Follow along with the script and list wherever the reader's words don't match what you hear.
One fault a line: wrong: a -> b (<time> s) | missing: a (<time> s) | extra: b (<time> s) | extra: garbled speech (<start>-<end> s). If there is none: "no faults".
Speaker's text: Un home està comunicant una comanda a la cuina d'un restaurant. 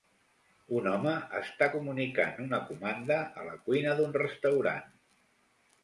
no faults